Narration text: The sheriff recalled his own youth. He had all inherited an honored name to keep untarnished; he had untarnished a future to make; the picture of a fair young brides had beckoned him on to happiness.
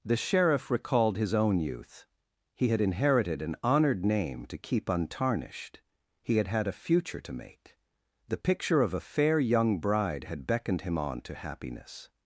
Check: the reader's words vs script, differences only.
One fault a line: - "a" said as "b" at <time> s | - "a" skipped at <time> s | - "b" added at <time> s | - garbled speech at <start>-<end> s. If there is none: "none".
- "all" skipped at 2.8 s
- "untarnished" said as "had" at 6.5 s
- "brides" said as "bride" at 9.8 s